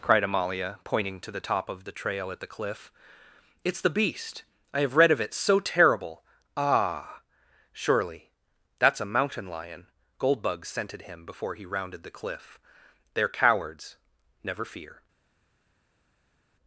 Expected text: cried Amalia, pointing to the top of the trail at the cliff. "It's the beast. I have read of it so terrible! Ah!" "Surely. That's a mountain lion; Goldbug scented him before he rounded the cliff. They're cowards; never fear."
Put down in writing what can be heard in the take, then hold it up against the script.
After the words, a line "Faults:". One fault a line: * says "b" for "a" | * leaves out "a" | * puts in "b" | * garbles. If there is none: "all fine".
cried Amalia, pointing to the top of the trail at the cliff. "It's the beast. I have read of it so terrible! Ah!" "Surely. That's a mountain lion; Goldbug scented him before he rounded the cliff. They're cowards; never fear."
Faults:
all fine